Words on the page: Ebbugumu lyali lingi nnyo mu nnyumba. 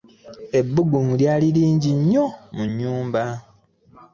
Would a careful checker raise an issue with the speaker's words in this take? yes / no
no